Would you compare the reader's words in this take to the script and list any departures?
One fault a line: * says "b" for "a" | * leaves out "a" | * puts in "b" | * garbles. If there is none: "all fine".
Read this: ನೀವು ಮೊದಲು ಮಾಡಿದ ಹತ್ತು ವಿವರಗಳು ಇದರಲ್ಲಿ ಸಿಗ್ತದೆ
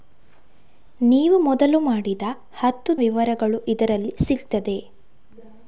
all fine